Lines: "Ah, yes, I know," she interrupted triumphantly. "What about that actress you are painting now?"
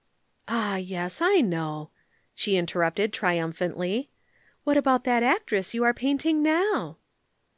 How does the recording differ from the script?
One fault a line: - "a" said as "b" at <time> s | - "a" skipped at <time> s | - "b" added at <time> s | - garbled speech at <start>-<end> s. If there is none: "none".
none